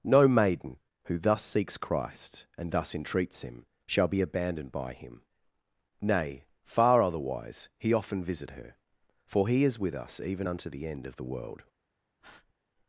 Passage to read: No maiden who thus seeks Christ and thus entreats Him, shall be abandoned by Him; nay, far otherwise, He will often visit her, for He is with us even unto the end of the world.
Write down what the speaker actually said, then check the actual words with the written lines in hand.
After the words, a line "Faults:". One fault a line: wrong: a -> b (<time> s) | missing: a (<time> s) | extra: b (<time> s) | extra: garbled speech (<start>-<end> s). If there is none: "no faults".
No maiden who thus seeks Christ and thus entreats Him, shall be abandoned by Him; nay, far otherwise, He often visit her, for He is with us even unto the end of the world.
Faults:
missing: will (7.9 s)